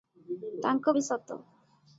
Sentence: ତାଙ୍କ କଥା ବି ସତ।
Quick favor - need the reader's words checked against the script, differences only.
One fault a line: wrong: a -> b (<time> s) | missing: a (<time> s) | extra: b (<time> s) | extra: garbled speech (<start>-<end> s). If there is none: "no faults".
missing: କଥା (0.9 s)